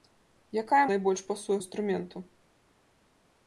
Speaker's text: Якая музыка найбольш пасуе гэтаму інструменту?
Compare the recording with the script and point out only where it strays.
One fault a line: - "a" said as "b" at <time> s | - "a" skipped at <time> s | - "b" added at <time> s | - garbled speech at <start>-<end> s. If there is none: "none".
- "музыка" skipped at 0.8 s
- "гэтаму" skipped at 1.6 s